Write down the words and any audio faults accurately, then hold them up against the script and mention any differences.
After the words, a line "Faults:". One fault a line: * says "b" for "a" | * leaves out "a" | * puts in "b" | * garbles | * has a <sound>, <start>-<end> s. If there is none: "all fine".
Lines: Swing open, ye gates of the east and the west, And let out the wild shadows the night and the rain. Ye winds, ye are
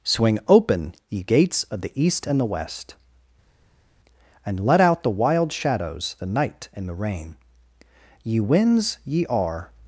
Swing open, ye gates of the east and the west, And let out the wild shadows the night and the rain. Ye winds, ye are
Faults:
all fine